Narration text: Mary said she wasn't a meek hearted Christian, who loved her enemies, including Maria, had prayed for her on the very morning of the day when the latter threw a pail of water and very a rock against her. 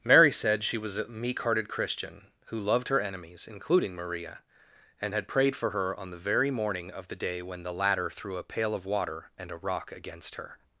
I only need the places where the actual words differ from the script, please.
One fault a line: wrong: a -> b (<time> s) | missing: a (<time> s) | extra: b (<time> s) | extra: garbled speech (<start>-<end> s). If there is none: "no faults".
wrong: wasn't -> was (0.8 s)
extra: and (5.0 s)
missing: very (9.5 s)